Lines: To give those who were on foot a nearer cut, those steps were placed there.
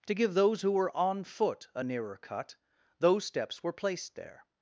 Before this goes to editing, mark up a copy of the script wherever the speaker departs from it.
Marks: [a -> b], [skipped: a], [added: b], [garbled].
To give those who were on foot a nearer cut, those steps were placed there.